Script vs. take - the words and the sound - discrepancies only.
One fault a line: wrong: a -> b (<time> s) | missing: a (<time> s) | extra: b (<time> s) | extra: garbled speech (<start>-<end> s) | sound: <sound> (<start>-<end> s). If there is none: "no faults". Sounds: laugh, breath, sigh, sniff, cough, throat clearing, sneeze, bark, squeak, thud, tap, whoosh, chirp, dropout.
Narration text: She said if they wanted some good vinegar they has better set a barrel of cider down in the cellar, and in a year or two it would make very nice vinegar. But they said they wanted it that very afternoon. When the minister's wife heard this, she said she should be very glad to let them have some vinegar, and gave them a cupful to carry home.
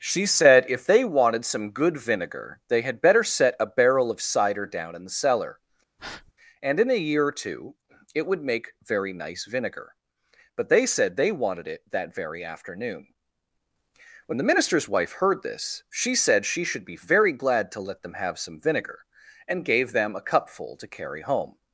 wrong: has -> had (2.8 s)
sound: breath (6.0-6.3 s)